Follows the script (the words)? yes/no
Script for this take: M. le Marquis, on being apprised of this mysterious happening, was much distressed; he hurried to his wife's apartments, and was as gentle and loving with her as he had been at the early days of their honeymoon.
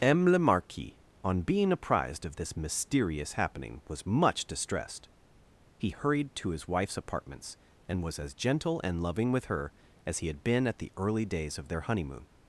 yes